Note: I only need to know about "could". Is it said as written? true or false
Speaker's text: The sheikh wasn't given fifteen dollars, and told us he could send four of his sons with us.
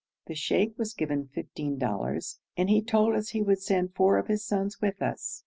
false